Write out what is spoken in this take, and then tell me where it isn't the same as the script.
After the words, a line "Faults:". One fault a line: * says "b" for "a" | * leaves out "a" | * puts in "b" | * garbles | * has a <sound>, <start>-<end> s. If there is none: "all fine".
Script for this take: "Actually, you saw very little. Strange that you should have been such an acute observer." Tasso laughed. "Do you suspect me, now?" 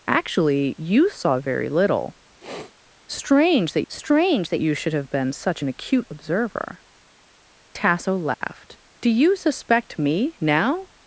"Actually, you saw very little. Strange that strange that you should have been such an acute observer." Tasso laughed. "Do you suspect me, now?"
Faults:
* has a sniff, 2.4-2.8 s
* puts in "strange that"
* has a dropout, 8.3-8.4 s